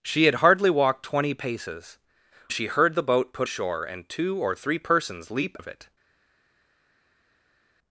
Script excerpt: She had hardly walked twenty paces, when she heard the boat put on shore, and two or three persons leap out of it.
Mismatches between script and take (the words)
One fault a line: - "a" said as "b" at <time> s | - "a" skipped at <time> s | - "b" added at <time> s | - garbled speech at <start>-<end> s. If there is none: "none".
- "when" skipped at 2.0 s
- "on" skipped at 3.5 s
- "out" skipped at 5.6 s